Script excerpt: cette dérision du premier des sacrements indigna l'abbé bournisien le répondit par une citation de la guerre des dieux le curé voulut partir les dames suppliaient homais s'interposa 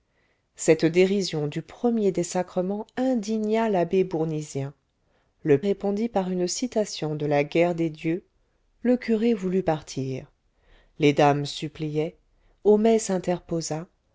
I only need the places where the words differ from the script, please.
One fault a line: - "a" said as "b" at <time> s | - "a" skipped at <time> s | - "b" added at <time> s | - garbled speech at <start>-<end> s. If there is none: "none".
none